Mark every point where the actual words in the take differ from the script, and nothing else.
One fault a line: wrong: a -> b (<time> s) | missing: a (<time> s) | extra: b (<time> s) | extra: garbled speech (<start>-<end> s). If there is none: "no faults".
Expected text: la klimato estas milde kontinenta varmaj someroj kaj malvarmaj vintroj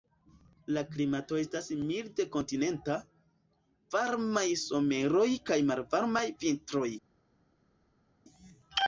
no faults